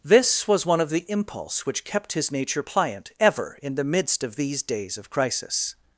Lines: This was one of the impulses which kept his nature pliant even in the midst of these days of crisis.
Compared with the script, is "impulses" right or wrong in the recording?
wrong